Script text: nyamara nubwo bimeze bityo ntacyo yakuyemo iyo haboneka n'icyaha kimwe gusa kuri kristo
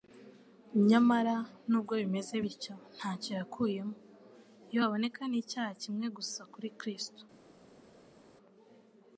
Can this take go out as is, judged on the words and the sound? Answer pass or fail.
pass